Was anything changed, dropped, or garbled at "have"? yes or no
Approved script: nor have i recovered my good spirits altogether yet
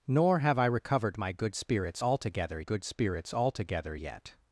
no